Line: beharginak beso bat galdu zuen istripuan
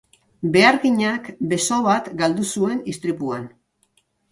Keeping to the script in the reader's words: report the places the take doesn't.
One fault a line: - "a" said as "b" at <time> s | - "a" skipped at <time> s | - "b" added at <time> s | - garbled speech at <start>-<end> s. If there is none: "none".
none